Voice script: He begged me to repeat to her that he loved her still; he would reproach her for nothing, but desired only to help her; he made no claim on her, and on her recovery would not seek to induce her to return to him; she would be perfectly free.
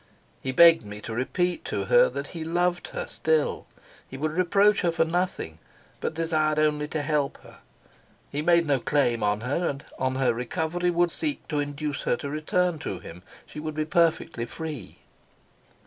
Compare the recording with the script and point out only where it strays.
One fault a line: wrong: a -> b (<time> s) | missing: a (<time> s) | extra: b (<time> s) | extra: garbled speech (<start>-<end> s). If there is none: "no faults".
missing: not (11.1 s)